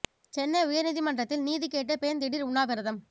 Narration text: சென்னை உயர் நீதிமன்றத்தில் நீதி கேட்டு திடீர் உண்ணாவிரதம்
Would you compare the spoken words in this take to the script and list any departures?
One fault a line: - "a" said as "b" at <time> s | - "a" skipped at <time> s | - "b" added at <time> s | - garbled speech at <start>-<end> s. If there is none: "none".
- "பெண்" added at 2.0 s